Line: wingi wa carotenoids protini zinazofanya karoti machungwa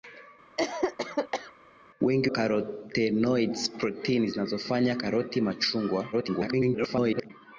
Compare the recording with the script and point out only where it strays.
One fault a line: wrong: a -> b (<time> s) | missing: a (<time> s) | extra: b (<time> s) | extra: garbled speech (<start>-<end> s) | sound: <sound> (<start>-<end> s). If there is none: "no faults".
sound: cough (0.6-1.5 s)
missing: wa (2.3 s)
extra: garbled speech (6.1-7.3 s)